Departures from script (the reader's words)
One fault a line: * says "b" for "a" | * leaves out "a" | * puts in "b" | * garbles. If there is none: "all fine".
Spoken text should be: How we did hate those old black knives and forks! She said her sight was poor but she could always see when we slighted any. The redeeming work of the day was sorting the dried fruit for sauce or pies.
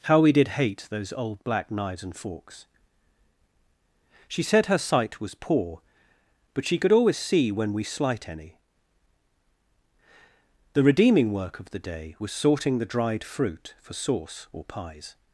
* says "slight" for "slighted"